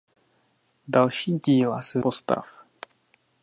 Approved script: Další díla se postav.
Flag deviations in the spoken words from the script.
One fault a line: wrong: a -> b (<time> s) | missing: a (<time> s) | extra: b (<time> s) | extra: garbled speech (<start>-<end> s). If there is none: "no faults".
no faults